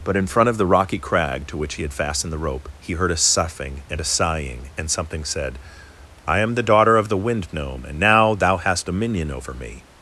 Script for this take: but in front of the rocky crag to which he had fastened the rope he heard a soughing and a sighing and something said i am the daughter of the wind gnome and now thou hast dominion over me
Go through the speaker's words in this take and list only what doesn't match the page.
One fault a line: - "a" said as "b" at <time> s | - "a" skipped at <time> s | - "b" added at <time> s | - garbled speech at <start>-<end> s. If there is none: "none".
none